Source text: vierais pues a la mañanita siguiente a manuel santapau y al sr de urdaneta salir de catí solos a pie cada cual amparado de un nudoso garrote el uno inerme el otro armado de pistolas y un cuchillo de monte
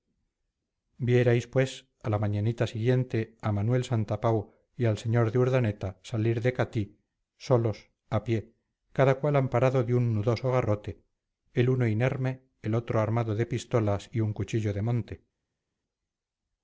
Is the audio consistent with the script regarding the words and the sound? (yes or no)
yes